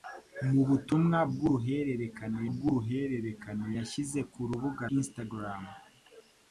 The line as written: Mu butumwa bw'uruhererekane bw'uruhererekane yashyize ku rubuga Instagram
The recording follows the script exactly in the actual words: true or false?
true